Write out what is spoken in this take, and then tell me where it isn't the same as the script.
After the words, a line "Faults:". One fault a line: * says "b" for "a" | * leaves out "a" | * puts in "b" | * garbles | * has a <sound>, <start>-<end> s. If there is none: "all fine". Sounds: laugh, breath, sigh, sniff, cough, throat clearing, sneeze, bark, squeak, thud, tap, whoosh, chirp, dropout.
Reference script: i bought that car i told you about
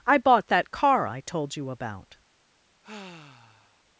i bought that car i told you about
Faults:
* has a sigh, 2.8-3.8 s